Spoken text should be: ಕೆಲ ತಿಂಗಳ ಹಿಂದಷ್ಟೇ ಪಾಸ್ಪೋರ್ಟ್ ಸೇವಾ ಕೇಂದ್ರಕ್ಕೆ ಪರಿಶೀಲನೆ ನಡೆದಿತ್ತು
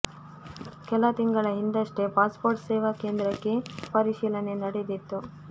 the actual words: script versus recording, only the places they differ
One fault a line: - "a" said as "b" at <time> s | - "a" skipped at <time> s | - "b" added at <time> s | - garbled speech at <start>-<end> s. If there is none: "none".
none